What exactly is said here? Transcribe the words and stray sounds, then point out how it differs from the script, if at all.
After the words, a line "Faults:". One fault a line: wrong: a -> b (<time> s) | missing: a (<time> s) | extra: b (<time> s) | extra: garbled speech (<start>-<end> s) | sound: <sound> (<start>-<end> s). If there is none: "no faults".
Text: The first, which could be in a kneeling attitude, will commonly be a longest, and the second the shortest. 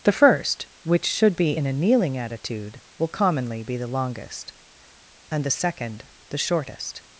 The first, which should be in a kneeling attitude, will commonly be the longest, and the second the shortest.
Faults:
wrong: could -> should (1.0 s)
wrong: a -> the (3.8 s)